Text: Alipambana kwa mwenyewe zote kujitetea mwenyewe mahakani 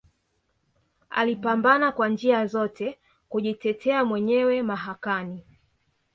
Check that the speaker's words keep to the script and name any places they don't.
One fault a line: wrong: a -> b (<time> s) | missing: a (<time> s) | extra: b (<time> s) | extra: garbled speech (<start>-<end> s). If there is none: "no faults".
wrong: mwenyewe -> njia (2.1 s)